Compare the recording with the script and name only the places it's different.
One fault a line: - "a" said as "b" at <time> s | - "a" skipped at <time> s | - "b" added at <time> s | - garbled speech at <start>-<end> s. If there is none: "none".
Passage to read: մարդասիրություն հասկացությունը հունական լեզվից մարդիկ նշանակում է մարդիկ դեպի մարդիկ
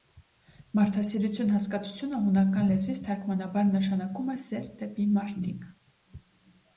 - "մարդիկ" said as "թարգմանաբար" at 3.1 s
- "մարդիկ" said as "սեր" at 4.4 s